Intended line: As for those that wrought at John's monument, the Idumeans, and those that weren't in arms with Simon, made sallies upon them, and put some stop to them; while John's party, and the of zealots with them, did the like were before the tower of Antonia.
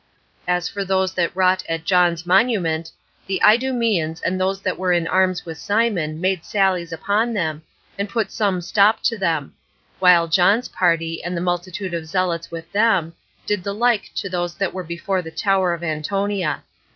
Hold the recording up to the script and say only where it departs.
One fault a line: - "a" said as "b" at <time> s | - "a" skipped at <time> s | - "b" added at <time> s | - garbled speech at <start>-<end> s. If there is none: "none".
- "weren't" said as "were" at 4.8 s
- "multitude" added at 11.4 s
- "to those that" added at 14.2 s